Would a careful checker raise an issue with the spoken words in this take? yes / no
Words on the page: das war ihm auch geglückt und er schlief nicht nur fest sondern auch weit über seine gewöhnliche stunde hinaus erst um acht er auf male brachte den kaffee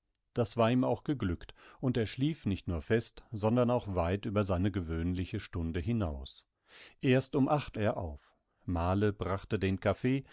no